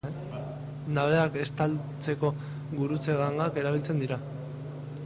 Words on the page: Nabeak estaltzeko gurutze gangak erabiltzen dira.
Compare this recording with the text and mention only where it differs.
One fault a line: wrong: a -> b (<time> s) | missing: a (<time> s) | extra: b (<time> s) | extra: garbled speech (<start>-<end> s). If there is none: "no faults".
no faults